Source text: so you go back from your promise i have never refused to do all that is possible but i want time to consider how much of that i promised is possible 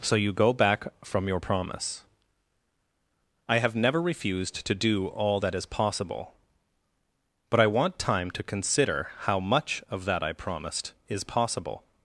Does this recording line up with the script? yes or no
yes